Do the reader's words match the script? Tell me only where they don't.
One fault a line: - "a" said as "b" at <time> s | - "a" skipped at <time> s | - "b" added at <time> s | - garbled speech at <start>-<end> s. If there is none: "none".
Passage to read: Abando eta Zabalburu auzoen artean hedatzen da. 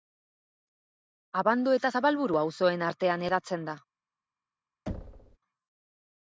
none